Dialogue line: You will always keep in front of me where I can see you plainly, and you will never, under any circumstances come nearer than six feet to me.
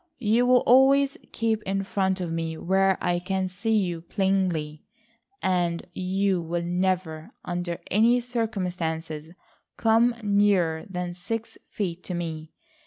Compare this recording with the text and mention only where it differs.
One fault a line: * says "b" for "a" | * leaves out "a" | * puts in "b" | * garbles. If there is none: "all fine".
all fine